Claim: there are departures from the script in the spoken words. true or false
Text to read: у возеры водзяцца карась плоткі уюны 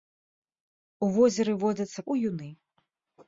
true